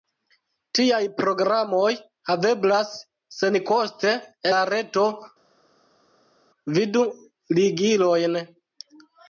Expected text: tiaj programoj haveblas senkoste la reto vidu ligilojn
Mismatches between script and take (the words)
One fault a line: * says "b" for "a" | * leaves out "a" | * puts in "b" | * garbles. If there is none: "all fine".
all fine